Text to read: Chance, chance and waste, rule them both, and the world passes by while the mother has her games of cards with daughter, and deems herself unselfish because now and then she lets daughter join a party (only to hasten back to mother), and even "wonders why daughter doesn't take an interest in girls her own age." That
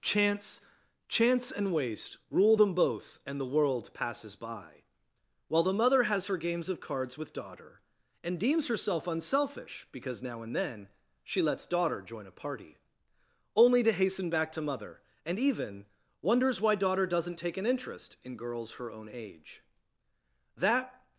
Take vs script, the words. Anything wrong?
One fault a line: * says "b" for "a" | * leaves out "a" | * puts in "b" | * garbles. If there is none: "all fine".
all fine